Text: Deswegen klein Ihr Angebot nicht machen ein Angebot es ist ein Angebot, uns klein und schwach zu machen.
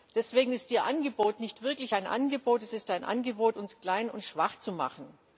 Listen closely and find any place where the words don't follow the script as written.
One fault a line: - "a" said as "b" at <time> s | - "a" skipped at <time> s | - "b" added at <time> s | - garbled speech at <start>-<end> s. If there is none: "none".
- "klein" said as "ist" at 0.5 s
- "machen" said as "wirklich" at 1.6 s